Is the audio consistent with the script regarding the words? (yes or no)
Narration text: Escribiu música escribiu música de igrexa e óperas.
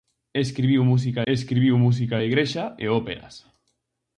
yes